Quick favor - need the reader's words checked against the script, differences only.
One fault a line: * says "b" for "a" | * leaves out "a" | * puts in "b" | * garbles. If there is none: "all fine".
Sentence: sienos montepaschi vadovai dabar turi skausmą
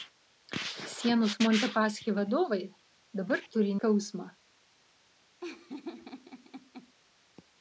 all fine